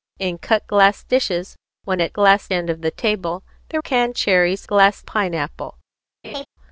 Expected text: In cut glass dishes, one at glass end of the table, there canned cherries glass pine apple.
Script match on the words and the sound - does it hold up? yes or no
no